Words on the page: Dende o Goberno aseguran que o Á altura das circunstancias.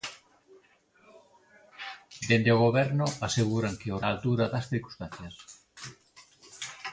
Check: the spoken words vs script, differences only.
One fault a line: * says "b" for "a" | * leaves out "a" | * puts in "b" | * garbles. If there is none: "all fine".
all fine